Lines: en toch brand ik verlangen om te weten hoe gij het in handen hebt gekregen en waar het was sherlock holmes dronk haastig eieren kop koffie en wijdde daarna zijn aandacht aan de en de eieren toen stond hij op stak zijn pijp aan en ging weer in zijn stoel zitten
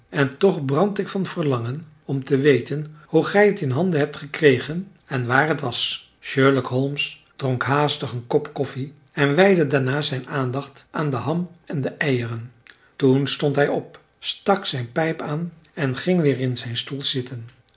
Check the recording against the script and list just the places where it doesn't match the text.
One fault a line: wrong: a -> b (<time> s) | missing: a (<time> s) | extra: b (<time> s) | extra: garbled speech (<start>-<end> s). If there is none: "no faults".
extra: van (1.1 s)
wrong: eieren -> een (8.1 s)
extra: ham (11.2 s)